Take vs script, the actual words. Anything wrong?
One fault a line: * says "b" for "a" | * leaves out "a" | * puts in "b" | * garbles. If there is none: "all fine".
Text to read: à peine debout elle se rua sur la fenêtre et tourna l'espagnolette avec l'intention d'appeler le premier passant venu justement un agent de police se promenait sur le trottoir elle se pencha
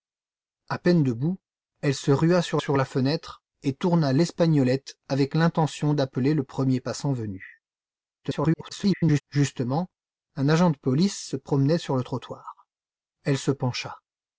* puts in "sur"
* garbles